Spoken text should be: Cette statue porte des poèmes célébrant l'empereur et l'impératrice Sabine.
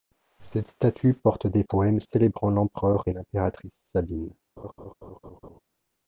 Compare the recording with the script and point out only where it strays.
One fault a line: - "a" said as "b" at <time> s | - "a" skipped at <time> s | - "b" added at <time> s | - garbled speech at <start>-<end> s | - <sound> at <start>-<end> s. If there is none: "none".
- laugh at 4.6-5.6 s